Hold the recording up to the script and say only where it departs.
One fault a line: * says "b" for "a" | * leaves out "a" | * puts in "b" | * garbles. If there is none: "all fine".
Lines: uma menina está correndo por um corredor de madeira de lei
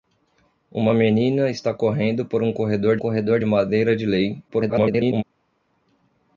* puts in "corredor"
* garbles